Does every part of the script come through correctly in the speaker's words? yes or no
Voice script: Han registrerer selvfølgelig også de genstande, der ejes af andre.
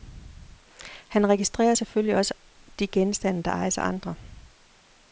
yes